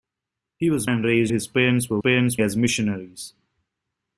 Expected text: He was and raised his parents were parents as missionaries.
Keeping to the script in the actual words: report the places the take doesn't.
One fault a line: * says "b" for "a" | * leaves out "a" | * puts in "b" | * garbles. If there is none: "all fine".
all fine